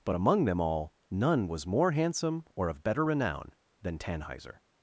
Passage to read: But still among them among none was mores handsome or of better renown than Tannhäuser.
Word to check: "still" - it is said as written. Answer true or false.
false